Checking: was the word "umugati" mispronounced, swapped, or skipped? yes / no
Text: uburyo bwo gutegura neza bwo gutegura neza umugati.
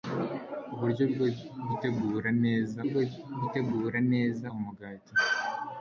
no